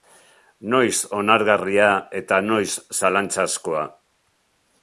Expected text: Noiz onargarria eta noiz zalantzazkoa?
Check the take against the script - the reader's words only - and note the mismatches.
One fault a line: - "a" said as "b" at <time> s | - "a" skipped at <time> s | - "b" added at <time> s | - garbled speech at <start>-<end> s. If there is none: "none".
none